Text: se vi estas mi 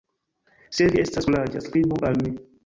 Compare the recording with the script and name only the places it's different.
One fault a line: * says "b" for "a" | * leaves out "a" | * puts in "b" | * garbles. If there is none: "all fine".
* puts in "kuraĝa skribu al"